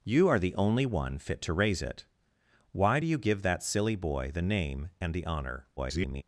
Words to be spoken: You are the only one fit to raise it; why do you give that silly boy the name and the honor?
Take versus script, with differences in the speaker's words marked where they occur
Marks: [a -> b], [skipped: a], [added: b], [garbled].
You are the only one fit to raise it; why do you give that silly boy the name and the honor? [garbled]